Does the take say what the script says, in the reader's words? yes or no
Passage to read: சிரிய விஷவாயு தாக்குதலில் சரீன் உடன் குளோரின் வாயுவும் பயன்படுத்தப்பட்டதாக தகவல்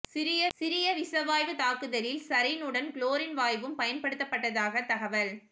no